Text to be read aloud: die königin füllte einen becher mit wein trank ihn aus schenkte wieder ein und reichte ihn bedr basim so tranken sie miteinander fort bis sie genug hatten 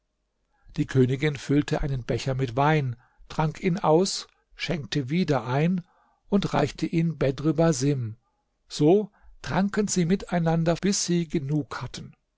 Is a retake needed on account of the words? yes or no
yes